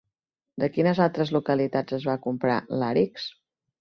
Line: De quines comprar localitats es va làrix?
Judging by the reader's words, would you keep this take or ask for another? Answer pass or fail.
fail